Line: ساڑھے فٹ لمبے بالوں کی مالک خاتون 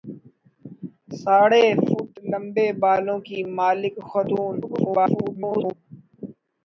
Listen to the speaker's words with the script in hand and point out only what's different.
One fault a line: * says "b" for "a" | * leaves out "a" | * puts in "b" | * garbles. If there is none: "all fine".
* garbles